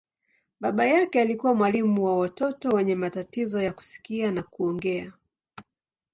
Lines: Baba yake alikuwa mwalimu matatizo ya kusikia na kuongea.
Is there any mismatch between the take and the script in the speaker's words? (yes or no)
yes